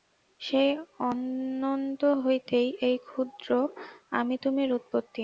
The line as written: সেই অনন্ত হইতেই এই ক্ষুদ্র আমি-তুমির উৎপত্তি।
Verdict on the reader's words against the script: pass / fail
pass